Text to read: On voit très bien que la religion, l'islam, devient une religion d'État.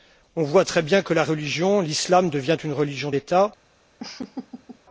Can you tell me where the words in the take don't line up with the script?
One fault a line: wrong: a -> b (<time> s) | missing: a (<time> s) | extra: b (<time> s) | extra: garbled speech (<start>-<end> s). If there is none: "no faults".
no faults